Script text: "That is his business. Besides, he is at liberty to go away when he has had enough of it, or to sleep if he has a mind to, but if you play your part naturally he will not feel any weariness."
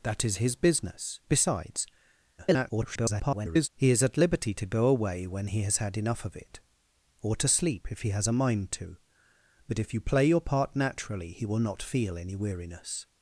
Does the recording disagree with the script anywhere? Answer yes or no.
yes